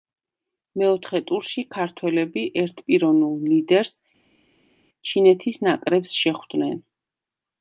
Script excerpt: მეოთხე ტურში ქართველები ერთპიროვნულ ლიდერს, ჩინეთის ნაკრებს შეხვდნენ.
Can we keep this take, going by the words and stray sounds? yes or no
yes